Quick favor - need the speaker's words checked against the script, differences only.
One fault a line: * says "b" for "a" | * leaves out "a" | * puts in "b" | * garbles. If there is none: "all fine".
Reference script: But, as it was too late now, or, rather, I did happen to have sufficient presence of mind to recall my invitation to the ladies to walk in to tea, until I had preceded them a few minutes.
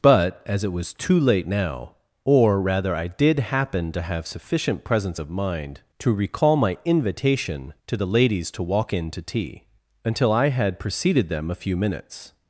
all fine